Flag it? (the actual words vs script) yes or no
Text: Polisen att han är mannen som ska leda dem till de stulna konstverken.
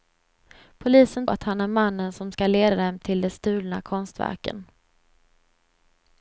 no